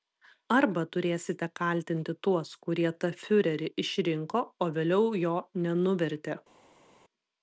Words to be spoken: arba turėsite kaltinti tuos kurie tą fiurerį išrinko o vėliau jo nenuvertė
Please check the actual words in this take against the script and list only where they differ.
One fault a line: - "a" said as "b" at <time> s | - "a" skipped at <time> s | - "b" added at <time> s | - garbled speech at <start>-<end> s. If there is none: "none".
none